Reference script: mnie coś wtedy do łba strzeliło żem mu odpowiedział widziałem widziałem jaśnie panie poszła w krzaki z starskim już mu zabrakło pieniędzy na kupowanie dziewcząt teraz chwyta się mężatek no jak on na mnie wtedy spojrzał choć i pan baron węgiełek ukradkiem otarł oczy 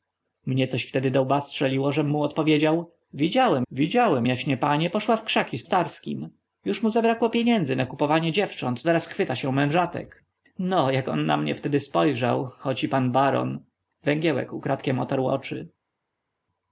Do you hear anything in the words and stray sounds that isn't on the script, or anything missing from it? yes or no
no